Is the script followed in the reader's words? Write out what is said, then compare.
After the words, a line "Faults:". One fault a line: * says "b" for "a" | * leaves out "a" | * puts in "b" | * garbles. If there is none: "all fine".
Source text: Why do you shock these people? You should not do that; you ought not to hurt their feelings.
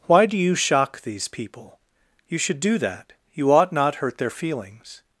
Why do you shock these people? You should do that; you ought not hurt their feelings.
Faults:
* leaves out "not"
* leaves out "to"